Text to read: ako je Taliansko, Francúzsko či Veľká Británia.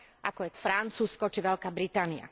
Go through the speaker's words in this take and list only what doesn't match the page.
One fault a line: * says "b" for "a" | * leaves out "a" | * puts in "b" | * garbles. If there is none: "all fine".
* leaves out "Taliansko"